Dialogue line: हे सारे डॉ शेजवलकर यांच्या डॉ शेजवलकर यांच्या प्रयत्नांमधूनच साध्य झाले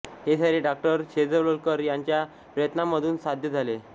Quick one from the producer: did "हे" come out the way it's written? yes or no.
yes